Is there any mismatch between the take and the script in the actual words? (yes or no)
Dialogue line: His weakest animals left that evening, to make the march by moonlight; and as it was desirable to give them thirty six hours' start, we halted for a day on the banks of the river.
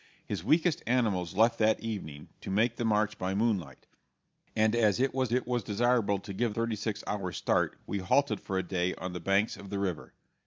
yes